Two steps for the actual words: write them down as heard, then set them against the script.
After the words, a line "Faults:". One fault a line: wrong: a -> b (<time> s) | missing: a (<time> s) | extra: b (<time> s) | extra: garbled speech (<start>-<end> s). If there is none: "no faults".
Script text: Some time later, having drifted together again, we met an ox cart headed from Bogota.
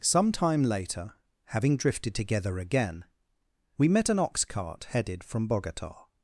Some time later, having drifted together again, we met an ox cart headed from Bogota.
Faults:
no faults